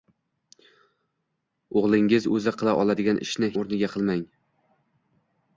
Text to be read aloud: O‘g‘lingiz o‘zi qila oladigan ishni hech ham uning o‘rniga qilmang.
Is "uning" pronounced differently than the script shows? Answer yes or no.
yes